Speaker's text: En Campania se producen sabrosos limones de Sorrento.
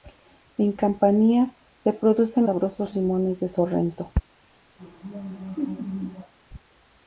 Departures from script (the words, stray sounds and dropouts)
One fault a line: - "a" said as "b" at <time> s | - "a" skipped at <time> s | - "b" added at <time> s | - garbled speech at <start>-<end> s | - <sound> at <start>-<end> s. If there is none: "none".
- laugh at 4.8-6.3 s